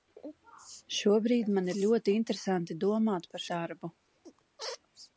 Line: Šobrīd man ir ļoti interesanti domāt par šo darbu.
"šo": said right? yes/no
no